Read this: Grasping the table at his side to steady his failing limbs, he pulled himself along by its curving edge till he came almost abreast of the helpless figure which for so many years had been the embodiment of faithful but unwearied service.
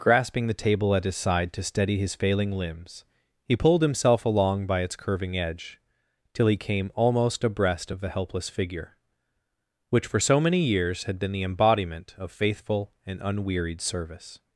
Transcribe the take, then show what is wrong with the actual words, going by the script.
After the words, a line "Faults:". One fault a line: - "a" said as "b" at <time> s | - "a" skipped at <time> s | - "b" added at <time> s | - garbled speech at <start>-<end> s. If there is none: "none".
Grasping the table at his side to steady his failing limbs, he pulled himself along by its curving edge till he came almost abreast of the helpless figure which for so many years had been the embodiment of faithful and unwearied service.
Faults:
- "but" said as "and" at 13.1 s